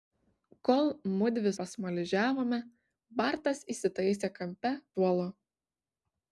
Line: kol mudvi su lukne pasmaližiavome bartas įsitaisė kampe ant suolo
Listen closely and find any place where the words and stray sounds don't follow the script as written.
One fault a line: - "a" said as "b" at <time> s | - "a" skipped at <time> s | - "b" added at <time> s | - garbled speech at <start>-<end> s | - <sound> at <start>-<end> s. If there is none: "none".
- "su lukne" skipped at 1.5 s
- "ant" skipped at 4.8 s